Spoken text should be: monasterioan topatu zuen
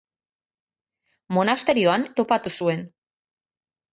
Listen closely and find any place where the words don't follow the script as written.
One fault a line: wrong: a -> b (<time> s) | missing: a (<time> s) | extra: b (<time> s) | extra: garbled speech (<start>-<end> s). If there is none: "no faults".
no faults